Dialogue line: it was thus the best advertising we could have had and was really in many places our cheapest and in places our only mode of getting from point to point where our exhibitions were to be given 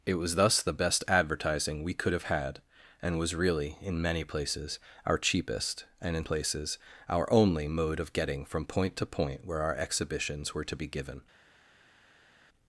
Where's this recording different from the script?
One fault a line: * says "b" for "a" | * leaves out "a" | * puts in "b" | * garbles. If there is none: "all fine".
all fine